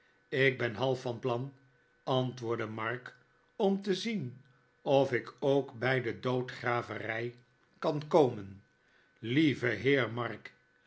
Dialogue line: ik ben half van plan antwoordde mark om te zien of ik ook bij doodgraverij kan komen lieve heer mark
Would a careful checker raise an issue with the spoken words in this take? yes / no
yes